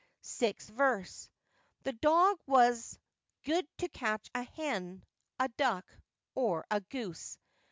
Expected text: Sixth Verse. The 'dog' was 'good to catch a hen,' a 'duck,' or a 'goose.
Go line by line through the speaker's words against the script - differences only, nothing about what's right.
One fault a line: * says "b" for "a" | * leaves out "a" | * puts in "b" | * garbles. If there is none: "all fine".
all fine